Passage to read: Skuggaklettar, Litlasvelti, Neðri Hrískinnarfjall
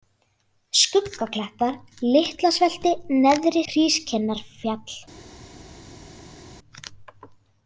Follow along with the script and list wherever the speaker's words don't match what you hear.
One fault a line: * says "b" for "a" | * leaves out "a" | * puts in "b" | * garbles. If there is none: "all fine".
all fine